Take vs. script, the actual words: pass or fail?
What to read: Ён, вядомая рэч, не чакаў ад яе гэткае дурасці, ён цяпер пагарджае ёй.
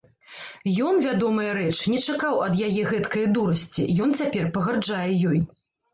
pass